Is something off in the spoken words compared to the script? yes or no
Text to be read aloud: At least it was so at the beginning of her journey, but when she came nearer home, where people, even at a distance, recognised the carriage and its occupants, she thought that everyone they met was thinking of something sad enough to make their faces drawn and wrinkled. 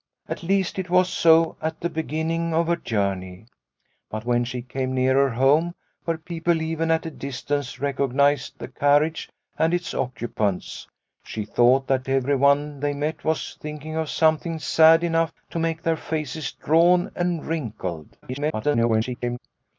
yes